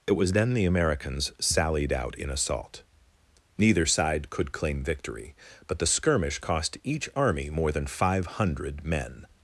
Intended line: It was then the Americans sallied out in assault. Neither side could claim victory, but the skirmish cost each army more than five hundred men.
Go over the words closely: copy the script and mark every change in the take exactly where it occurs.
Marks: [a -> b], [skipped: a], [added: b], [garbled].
It was then the Americans sallied out in assault. Neither side could claim victory, but the skirmish cost each army more than five hundred men.